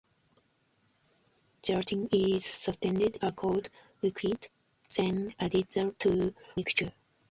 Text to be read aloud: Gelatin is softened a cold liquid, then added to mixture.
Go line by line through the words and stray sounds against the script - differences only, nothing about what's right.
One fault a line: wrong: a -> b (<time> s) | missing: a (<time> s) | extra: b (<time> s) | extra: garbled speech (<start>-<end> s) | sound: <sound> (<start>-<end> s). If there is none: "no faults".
no faults